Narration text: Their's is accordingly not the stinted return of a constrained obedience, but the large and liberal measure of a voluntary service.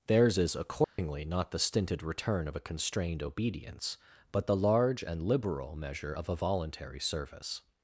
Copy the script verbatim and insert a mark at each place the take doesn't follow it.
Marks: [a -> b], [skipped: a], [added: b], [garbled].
Their's is accordingly not the stinted return of a constrained obedience, but the large and liberal measure of a voluntary service.